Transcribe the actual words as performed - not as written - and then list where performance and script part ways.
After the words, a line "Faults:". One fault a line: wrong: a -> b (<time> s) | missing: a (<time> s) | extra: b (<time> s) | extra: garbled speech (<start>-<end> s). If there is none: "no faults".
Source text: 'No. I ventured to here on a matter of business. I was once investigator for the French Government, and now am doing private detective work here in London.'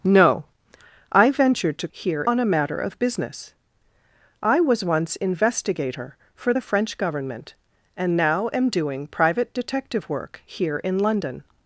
'No. I ventured to here on a matter of business. I was once investigator for the French Government, and now am doing private detective work here in London.'
Faults:
no faults